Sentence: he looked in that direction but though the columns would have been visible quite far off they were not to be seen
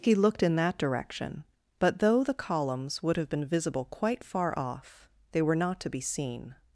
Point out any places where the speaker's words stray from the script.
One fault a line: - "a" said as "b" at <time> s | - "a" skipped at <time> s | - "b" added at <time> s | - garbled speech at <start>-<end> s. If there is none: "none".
none